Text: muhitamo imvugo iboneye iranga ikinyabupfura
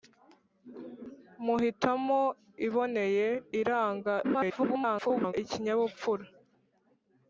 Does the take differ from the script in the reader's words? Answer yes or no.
yes